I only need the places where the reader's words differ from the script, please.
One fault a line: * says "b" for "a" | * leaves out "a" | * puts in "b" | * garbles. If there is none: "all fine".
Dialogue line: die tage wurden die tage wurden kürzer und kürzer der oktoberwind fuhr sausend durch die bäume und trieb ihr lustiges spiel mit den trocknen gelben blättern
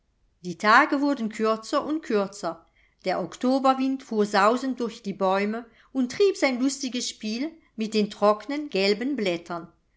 * leaves out "die tage wurden"
* says "sein" for "ihr"